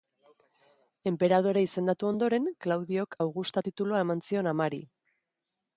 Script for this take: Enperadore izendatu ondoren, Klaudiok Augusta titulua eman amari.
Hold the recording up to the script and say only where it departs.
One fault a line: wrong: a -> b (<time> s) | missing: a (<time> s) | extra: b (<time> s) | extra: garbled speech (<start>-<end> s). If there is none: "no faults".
extra: zion (4.3 s)